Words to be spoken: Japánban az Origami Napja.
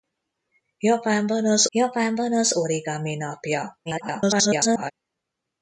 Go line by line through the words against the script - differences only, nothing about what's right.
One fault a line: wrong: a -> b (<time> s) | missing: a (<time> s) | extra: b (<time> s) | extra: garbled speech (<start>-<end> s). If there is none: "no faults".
extra: japánban az (1.7 s)
extra: garbled speech (3.9-4.9 s)